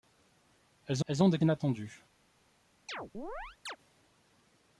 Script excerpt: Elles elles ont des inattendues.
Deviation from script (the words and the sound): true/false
true